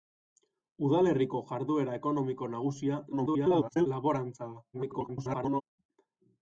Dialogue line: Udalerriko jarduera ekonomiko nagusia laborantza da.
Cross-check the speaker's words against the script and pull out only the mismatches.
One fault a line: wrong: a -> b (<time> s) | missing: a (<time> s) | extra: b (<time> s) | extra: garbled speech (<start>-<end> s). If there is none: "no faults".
extra: garbled speech (3.1-3.9 s)
extra: garbled speech (4.7-5.6 s)